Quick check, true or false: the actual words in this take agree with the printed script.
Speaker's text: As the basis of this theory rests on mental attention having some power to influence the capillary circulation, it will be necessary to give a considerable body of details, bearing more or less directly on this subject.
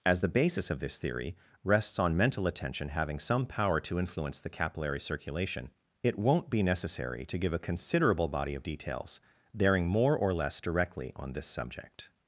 false